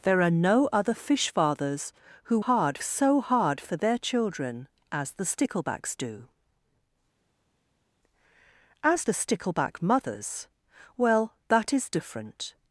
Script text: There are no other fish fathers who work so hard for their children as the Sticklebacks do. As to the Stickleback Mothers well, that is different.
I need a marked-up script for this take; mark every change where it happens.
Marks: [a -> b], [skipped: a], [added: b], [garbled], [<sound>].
There are no other fish fathers who [work -> hard] so hard for their children as the Sticklebacks do. As [skipped: to] the Stickleback Mothers well, that is different.